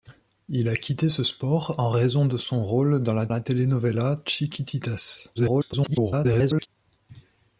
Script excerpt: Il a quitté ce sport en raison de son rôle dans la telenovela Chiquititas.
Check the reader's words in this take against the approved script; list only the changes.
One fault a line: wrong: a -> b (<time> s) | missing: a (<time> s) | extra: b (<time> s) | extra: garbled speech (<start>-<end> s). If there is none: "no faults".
extra: la (3.3 s)
extra: garbled speech (5.4-6.7 s)